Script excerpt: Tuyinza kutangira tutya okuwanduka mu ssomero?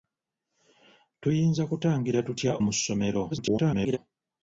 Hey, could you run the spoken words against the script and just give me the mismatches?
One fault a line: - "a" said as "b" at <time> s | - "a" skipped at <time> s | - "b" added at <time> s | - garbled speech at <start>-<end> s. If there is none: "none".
- "okuwanduka" skipped at 2.5 s
- garbled speech at 3.3-4.0 s